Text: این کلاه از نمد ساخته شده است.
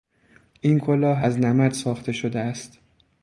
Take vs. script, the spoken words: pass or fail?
pass